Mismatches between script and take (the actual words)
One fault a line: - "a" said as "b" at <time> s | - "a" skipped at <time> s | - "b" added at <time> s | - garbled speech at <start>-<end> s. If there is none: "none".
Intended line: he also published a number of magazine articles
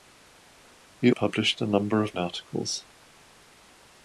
- "also" skipped at 1.1 s
- "magazine" skipped at 2.2 s